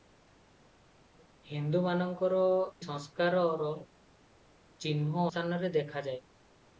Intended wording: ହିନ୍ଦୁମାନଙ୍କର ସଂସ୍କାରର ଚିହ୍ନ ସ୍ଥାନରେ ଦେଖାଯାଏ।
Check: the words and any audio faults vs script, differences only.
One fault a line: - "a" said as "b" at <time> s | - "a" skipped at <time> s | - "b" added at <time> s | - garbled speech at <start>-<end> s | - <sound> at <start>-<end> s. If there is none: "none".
none